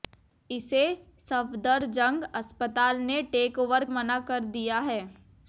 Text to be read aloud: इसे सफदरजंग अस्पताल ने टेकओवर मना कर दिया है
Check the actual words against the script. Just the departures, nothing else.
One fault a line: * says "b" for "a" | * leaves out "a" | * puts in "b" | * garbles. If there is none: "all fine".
all fine